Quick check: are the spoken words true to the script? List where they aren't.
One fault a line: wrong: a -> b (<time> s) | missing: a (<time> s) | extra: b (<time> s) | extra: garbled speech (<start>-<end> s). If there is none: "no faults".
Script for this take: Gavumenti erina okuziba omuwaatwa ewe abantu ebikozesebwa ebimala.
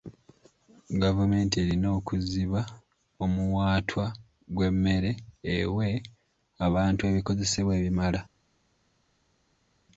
extra: gw'emmere (4.5 s)